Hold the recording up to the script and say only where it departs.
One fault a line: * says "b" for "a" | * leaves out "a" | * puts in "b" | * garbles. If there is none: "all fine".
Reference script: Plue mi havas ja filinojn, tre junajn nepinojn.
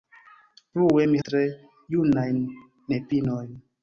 * leaves out "havas ja filinojn"